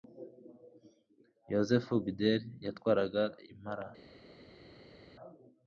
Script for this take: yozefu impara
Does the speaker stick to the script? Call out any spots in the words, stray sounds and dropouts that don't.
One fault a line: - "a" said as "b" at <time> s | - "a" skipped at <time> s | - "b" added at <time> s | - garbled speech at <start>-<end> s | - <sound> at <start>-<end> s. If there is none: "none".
- "bideri yatwaraga" added at 2.0 s